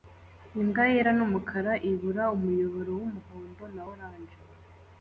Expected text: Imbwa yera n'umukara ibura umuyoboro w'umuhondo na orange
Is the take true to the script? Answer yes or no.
yes